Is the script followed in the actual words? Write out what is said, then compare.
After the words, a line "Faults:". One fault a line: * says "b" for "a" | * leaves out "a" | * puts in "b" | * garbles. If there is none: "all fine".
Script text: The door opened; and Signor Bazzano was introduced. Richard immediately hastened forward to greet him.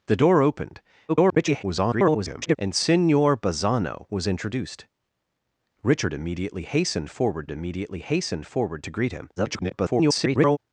The door opened; [garbled] and Signor Bazzano was introduced. Richard immediately hastened forward immediately hastened forward to greet him. [garbled]
Faults:
* garbles
* puts in "immediately hastened forward"
* garbles